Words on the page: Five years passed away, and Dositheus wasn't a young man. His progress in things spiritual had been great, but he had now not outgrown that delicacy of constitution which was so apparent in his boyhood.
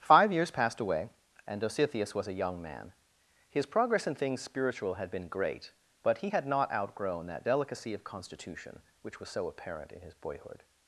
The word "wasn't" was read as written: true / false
false